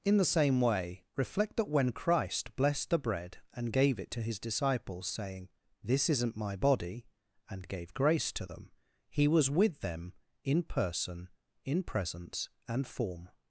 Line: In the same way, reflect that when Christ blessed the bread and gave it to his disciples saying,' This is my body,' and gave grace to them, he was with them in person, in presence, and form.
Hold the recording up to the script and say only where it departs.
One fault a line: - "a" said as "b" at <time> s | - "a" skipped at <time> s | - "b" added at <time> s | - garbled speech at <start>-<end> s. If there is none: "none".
- "is" said as "isn't" at 6.1 s